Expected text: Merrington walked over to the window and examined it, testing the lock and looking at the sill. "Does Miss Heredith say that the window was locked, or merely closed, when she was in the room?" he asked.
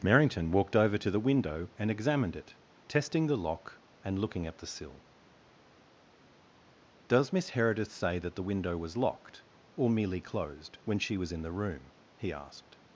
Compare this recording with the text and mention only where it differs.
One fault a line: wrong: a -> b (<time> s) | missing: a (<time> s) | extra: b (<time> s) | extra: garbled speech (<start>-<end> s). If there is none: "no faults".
no faults